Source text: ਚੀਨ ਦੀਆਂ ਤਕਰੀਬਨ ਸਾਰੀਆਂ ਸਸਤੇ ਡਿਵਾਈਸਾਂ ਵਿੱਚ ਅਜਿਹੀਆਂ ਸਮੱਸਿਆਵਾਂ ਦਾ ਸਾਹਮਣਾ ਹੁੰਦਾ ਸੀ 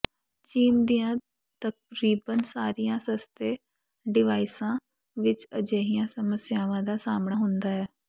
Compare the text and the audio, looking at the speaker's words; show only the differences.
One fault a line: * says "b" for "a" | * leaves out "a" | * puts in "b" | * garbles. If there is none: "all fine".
* says "ਹੈ" for "ਸੀ"